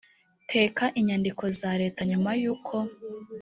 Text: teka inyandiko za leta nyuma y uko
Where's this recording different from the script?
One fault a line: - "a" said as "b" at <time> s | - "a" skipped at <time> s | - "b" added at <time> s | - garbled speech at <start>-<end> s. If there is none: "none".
none